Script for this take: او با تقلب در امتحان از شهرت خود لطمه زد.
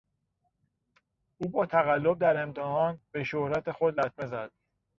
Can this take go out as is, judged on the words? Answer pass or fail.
fail